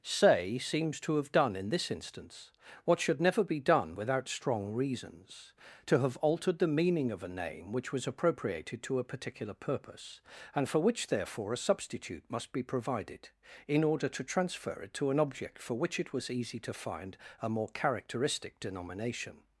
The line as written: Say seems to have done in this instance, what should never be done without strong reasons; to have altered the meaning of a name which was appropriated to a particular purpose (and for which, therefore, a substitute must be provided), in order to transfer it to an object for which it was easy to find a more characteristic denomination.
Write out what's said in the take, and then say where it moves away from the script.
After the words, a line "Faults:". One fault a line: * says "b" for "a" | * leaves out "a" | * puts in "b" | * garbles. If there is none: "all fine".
Say seems to have done in this instance, what should never be done without strong reasons; to have altered the meaning of a name which was appropriated to a particular purpose (and for which, therefore, a substitute must be provided), in order to transfer it to an object for which it was easy to find a more characteristic denomination.
Faults:
all fine